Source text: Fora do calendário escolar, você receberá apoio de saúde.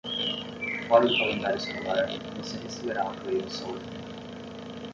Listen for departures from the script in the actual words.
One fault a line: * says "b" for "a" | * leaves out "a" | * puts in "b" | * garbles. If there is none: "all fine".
all fine